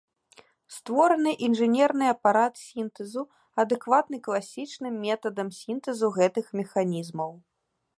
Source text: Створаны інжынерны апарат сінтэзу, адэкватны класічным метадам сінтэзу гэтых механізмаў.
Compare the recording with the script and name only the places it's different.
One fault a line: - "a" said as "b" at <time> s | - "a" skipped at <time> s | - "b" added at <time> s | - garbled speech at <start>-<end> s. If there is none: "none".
none